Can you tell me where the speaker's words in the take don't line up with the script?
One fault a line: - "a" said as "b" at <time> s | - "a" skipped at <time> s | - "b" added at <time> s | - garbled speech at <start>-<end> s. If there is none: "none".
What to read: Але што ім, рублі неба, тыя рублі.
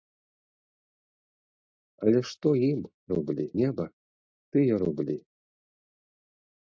none